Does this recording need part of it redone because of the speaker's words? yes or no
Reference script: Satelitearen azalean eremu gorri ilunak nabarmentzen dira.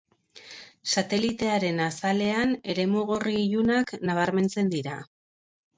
no